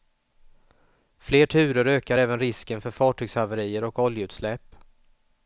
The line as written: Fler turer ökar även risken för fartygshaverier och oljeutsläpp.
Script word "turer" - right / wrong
right